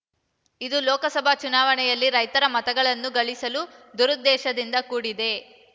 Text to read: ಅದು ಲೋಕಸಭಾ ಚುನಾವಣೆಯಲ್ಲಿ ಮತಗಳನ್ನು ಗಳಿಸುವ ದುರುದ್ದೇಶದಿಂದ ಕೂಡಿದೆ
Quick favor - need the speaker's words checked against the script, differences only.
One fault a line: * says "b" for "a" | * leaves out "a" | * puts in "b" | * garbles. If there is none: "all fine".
* says "ಇದು" for "ಅದು"
* puts in "ರೈತರ"